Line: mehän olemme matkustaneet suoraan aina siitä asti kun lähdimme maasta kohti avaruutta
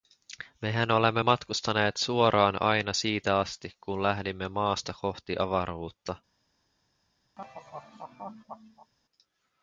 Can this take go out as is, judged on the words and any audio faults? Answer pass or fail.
fail